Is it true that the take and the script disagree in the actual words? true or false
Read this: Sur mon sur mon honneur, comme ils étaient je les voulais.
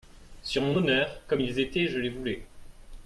true